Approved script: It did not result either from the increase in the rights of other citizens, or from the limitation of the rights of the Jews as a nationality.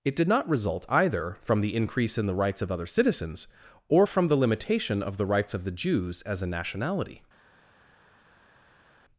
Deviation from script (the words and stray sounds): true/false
false